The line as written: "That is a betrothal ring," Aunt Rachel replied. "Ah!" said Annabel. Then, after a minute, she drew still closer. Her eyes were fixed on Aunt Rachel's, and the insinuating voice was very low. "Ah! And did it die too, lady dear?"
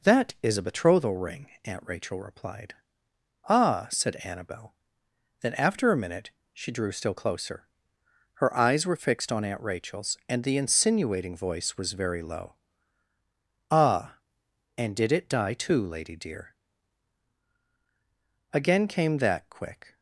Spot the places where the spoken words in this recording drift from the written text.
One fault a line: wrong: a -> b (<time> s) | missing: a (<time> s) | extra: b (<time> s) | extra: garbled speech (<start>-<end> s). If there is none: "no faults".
extra: Again came that quick (18.5 s)